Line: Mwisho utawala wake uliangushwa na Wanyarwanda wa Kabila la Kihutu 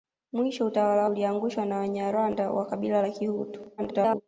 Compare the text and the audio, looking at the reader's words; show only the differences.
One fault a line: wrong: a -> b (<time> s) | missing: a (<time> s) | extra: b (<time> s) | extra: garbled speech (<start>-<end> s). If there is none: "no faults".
missing: wake (1.1 s)
extra: garbled speech (3.8-4.2 s)